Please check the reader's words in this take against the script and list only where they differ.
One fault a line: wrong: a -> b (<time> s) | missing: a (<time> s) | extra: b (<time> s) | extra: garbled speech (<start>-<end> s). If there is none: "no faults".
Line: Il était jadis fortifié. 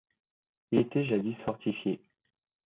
no faults